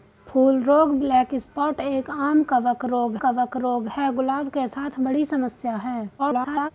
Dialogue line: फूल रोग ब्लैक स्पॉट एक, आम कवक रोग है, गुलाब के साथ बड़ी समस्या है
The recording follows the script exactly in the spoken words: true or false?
false